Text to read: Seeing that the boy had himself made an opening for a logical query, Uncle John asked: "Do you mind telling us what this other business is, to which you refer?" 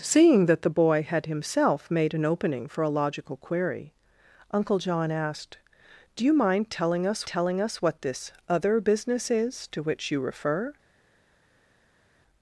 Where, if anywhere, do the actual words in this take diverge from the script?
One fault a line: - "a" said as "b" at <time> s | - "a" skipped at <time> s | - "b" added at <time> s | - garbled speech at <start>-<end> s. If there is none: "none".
- "telling us" added at 7.3 s